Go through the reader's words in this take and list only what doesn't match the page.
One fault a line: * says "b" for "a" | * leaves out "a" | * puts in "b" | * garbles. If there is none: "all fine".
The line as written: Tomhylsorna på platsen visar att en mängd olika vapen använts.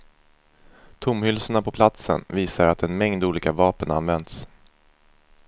all fine